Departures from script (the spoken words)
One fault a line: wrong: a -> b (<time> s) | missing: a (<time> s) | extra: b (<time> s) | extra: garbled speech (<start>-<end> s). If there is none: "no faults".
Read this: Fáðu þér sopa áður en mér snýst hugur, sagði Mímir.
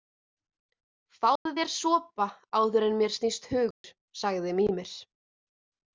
no faults